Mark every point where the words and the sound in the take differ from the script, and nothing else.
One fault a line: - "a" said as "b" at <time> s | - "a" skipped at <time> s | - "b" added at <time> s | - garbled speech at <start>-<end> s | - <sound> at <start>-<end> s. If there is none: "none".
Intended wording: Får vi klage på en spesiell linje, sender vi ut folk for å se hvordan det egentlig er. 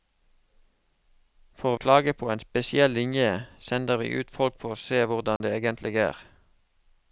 - "vi" skipped at 1.8 s
- dropout at 5.4-5.4 s